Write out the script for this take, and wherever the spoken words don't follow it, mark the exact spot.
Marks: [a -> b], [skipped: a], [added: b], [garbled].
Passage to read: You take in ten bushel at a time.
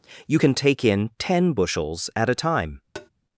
You [added: can] take in ten [bushel -> bushels] at a time.